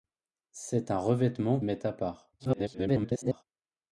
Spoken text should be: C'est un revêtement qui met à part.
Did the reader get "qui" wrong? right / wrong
wrong